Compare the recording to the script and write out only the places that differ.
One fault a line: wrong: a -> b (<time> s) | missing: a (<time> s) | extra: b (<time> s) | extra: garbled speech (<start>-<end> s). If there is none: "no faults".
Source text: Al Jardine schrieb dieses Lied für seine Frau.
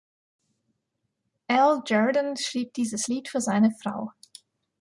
no faults